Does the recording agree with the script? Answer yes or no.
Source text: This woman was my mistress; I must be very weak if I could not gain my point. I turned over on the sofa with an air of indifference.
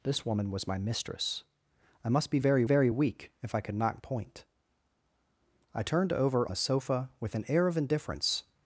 no